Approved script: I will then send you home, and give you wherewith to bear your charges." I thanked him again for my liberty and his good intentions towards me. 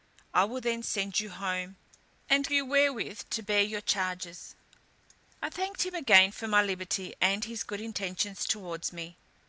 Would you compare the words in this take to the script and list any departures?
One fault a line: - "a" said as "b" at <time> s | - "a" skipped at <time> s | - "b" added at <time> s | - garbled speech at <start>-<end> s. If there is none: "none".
- "give" skipped at 2.5 s